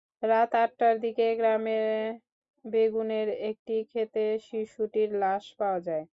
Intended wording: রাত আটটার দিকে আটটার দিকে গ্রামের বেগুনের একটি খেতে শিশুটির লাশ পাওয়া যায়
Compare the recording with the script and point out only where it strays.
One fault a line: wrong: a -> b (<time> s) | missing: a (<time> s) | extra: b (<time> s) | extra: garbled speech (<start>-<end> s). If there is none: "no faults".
missing: আটটার দিকে (1.2 s)